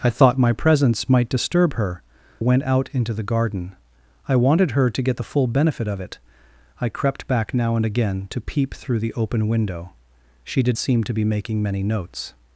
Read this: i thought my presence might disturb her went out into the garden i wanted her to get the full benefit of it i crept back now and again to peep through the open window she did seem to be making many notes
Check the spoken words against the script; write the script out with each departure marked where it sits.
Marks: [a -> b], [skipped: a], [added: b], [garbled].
i thought my presence might disturb her went out into the garden i wanted her to get the full benefit of it i crept back now and again to peep through the open window she did seem to be making many notes